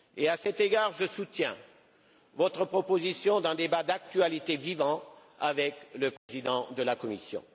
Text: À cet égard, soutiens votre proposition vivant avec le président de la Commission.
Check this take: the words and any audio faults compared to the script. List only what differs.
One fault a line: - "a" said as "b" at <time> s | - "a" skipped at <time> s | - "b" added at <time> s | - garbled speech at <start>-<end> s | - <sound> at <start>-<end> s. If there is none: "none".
- "je" added at 0.9 s
- "d'un débat d'actualité" added at 3.4 s
- dropout at 6.2-6.3 s